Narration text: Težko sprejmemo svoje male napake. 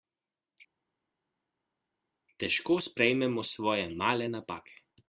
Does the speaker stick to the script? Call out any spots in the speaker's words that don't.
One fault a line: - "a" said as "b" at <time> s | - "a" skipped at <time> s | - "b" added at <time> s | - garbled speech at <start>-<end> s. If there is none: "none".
none